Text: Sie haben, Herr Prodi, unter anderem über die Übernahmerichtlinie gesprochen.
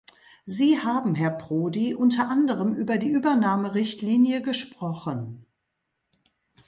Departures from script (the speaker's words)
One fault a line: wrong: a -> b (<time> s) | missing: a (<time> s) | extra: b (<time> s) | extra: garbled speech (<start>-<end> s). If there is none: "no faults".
no faults